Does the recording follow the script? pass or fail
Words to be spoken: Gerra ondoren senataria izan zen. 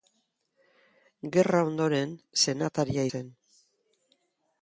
fail